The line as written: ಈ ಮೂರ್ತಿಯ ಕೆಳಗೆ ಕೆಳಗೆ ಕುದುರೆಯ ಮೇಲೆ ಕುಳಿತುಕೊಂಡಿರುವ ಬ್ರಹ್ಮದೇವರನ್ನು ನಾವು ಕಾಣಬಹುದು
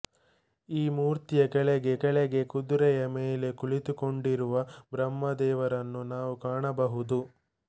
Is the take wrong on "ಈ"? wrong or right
right